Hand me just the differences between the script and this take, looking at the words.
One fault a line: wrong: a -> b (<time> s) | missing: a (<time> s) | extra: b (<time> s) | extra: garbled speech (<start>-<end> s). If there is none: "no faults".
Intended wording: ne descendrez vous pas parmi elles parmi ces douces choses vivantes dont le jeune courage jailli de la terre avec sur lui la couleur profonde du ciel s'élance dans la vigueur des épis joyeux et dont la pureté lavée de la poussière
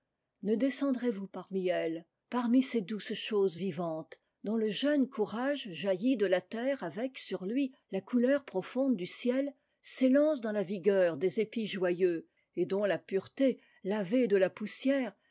missing: pas (1.3 s)